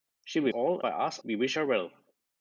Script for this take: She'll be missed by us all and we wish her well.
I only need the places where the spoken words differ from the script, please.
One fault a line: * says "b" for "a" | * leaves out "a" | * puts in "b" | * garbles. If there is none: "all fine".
* says "all" for "missed"
* leaves out "all and"